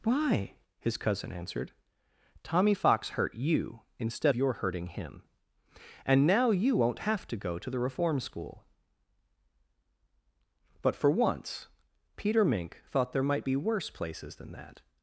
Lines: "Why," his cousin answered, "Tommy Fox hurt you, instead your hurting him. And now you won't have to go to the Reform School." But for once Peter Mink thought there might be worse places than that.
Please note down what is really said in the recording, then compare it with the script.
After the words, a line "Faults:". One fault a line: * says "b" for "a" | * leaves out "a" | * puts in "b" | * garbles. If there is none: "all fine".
"Why," his cousin answered, "Tommy Fox hurt you, instead your hurting him. And now you won't have to go to the Reform School." But for once Peter Mink thought there might be worse places than that.
Faults:
all fine